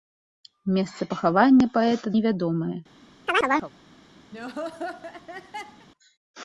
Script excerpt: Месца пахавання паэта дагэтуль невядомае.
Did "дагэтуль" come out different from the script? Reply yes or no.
yes